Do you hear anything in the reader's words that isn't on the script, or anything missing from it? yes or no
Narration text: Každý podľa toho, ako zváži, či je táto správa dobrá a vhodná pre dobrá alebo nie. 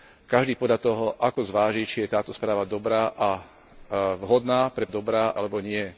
no